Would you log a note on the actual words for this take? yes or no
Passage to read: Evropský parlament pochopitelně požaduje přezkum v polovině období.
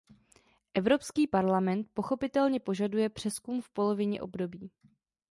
no